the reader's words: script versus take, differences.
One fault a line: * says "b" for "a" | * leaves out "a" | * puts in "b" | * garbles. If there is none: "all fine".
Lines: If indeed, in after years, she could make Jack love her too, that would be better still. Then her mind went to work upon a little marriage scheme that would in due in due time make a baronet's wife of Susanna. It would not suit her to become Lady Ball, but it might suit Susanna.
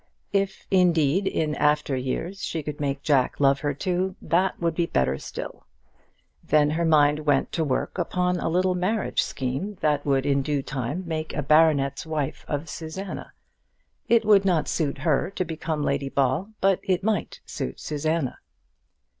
* leaves out "in due"